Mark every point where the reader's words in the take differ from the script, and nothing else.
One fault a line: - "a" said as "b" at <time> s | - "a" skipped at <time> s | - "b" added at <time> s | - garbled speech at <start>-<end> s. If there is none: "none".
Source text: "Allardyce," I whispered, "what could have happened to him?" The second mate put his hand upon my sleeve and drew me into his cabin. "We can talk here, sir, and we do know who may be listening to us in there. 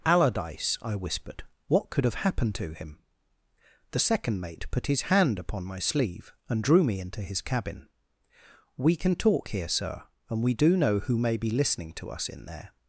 none